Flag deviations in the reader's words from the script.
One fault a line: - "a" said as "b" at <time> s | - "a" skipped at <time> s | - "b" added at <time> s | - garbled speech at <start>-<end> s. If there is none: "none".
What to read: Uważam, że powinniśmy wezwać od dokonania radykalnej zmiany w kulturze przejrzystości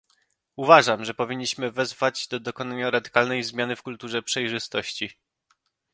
- "od" said as "do" at 2.3 s